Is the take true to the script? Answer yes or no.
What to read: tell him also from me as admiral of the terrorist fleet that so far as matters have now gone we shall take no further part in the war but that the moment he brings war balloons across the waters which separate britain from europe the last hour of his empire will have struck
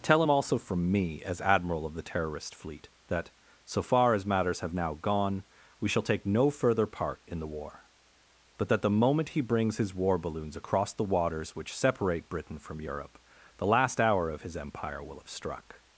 no